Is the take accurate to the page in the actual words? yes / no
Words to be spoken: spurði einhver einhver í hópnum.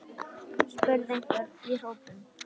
no